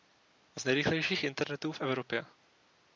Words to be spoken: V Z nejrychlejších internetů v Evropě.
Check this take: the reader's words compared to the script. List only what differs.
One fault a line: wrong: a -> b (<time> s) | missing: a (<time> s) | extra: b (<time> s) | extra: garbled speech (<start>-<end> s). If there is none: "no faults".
no faults